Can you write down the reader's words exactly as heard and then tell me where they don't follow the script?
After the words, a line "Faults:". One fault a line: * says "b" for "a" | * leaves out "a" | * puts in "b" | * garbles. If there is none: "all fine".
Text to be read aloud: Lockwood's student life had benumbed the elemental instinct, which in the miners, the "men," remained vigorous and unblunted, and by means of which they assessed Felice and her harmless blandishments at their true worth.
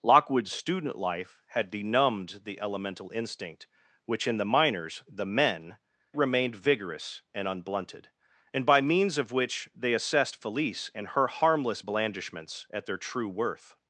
Lockwood's student life had benumbed the elemental instinct, which in the miners, the "men," remained vigorous and unblunted, and by means of which they assessed Felice and her harmless blandishments at their true worth.
Faults:
all fine